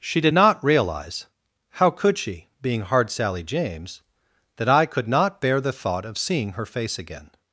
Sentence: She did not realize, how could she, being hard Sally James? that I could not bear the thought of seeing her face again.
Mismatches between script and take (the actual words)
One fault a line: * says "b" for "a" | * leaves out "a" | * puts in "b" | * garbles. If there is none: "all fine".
all fine